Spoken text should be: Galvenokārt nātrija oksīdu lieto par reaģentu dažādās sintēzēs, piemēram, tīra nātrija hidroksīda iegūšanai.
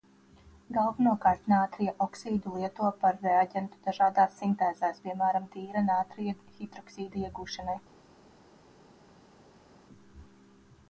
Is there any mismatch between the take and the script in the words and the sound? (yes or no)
no